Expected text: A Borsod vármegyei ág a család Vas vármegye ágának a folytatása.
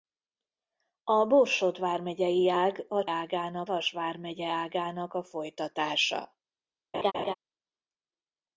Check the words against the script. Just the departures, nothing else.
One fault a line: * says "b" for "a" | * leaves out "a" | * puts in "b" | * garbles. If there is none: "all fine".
* says "ágának" for "család"